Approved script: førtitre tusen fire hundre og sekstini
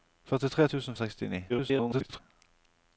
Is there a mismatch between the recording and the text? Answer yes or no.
yes